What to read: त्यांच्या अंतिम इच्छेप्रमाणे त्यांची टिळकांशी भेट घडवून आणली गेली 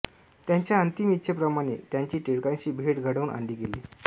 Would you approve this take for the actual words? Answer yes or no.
yes